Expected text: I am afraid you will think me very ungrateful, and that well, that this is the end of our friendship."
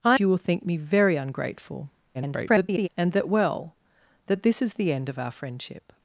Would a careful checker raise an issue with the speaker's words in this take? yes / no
yes